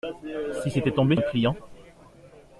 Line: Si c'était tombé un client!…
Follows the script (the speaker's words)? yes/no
yes